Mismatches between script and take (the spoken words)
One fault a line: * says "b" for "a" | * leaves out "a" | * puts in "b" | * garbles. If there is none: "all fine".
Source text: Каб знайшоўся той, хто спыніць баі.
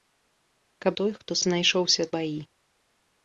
* leaves out "знайшоўся"
* says "знайшоўся" for "спыніць"